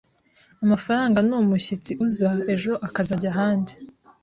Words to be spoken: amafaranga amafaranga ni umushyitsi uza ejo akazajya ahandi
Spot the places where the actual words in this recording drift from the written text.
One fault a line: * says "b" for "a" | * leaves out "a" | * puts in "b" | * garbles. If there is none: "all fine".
* leaves out "amafaranga"